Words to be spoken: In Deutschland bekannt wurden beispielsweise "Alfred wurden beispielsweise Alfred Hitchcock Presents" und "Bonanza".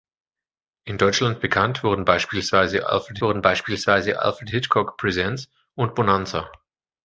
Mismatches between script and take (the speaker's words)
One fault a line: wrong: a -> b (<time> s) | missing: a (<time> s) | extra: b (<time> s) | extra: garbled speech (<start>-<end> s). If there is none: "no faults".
no faults